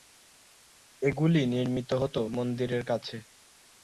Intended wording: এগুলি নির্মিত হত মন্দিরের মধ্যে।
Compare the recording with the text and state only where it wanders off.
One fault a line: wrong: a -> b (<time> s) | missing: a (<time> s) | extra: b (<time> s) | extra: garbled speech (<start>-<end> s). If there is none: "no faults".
wrong: মধ্যে -> কাছে (2.8 s)